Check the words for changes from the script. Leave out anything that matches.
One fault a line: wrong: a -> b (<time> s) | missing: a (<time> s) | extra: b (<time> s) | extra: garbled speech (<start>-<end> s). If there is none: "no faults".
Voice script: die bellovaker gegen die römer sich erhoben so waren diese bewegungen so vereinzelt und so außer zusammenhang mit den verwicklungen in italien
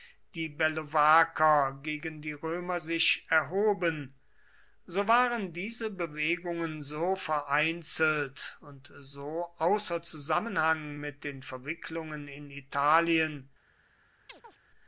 no faults